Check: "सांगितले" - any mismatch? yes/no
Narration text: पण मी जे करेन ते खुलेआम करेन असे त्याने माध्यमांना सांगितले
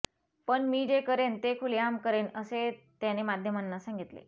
no